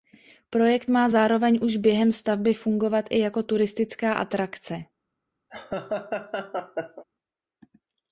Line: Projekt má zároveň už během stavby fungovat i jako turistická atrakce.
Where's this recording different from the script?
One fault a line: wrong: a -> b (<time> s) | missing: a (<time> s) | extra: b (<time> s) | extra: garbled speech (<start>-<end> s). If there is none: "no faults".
no faults